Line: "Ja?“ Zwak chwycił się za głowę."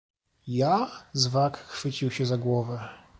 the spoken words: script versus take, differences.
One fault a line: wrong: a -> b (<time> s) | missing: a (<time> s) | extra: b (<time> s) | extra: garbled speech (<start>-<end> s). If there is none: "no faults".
no faults